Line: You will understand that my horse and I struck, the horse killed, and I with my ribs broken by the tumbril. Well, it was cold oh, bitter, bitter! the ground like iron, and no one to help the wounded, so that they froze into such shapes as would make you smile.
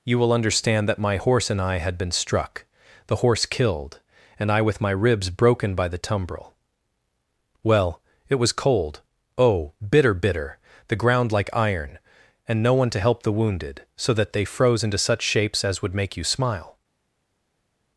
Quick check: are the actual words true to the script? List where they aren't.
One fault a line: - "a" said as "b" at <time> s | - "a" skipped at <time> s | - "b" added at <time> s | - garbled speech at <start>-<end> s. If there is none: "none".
- "had been" added at 1.8 s